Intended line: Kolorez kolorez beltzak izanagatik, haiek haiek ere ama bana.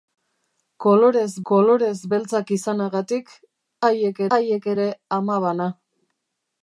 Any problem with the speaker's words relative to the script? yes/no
no